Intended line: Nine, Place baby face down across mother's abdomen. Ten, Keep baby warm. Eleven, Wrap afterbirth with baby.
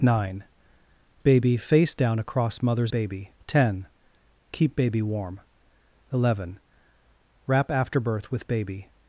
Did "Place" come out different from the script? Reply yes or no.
yes